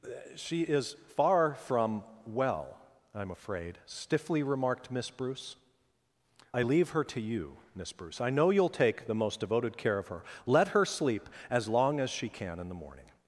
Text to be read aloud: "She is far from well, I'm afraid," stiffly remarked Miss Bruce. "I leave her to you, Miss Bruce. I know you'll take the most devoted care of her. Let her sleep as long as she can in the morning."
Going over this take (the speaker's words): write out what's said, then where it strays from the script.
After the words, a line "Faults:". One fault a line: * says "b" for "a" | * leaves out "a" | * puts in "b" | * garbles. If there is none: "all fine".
"She is far from well, I'm afraid," stiffly remarked Miss Bruce. "I leave her to you, Miss Bruce. I know you'll take the most devoted care of her. Let her sleep as long as she can in the morning."
Faults:
all fine